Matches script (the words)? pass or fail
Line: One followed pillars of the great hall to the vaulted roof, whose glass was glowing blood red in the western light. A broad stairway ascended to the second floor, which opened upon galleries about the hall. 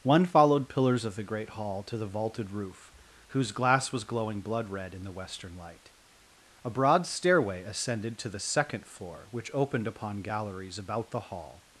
pass